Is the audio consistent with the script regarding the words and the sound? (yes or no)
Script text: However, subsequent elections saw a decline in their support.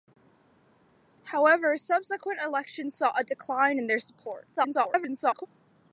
no